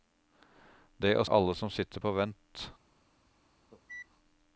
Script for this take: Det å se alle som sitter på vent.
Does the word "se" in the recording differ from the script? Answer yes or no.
yes